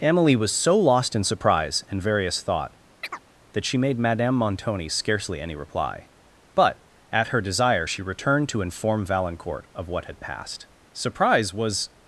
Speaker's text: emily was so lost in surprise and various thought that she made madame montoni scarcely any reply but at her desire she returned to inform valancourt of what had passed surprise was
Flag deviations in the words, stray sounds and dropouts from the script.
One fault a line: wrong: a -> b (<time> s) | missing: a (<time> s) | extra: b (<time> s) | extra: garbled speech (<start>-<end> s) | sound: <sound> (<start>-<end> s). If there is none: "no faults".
sound: chirp (3.0-3.2 s)